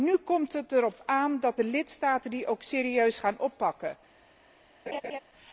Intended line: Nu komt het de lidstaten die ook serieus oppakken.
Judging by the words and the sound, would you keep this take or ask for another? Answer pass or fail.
fail